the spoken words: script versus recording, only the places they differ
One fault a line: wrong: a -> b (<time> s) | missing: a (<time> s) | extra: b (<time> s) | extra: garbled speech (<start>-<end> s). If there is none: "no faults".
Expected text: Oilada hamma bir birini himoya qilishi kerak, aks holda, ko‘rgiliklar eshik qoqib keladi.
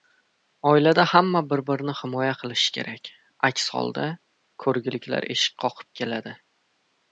no faults